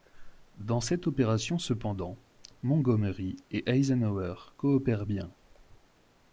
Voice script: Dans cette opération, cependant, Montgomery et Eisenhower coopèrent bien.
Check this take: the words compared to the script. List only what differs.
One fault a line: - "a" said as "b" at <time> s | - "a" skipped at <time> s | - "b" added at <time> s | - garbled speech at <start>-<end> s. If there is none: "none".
none